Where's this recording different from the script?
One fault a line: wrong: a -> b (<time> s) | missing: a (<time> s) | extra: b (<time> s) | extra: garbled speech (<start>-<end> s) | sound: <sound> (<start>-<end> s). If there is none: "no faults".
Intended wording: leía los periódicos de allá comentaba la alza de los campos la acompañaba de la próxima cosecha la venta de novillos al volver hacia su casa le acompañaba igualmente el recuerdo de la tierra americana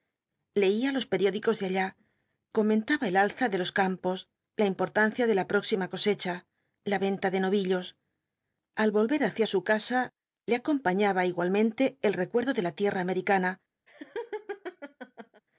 wrong: la -> el (3.1 s)
wrong: acompañaba -> importancia (4.7 s)
sound: laugh (13.9-15.4 s)